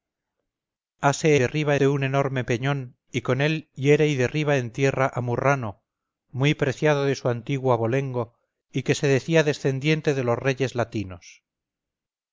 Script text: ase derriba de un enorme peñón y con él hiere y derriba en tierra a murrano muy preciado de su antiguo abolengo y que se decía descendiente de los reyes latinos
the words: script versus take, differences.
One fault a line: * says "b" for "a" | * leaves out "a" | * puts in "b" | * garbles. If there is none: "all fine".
all fine